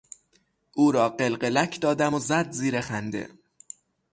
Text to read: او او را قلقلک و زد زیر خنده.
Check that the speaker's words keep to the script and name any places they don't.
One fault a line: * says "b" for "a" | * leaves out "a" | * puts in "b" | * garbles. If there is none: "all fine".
* leaves out "او"
* puts in "دادم"